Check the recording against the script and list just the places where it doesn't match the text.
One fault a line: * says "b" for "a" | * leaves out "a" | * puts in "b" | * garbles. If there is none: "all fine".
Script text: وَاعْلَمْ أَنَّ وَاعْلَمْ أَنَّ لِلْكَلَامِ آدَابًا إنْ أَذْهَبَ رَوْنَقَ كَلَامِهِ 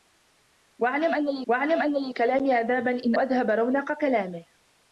all fine